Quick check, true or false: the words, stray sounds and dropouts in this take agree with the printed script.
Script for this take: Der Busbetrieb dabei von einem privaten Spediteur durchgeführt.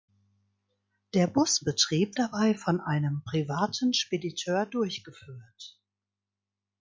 true